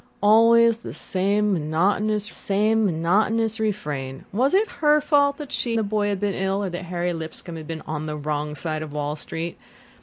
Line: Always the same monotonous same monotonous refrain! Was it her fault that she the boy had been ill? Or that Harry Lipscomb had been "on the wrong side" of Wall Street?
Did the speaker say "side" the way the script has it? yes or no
yes